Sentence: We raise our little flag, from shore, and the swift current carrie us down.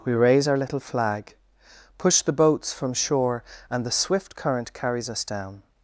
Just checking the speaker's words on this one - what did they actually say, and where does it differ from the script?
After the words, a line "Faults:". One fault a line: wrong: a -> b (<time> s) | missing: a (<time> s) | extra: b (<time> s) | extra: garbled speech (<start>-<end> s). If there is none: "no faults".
We raise our little flag, push the boats from shore, and the swift current carries us down.
Faults:
extra: push the boats (2.0 s)
wrong: carrie -> carries (4.7 s)